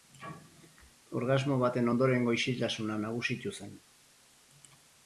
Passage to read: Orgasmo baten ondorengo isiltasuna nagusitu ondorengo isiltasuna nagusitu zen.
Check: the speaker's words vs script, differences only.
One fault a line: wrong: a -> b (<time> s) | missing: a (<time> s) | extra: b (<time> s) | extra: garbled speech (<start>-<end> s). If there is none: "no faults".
missing: ondorengo isiltasuna nagusitu (3.6 s)